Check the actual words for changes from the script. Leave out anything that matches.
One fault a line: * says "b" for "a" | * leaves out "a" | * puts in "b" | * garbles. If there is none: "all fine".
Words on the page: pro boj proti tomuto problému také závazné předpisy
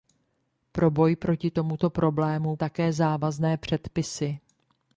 all fine